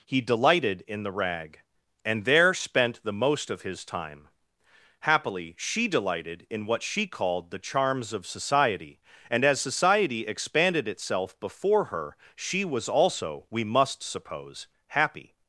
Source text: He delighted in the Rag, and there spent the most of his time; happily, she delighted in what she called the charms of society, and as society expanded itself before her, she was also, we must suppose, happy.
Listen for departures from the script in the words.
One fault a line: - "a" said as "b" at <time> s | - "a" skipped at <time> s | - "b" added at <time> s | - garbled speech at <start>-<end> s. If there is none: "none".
none